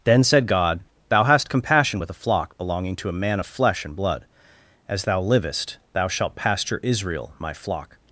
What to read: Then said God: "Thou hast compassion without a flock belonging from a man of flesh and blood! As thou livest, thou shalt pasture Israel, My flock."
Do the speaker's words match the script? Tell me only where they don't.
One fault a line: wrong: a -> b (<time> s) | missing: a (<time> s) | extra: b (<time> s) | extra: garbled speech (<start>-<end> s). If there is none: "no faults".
wrong: without -> with (2.0 s)
wrong: from -> to (3.0 s)